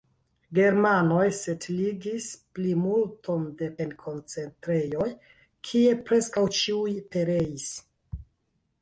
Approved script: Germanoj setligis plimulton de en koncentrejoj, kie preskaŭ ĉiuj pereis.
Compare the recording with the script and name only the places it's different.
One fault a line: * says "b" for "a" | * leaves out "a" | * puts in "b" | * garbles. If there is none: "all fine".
all fine